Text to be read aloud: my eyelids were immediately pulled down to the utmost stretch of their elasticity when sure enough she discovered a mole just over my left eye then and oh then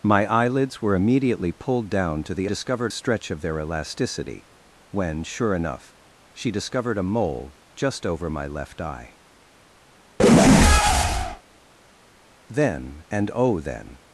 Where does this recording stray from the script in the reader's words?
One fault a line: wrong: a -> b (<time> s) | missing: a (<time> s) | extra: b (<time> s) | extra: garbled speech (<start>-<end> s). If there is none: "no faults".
wrong: utmost -> discovered (2.5 s)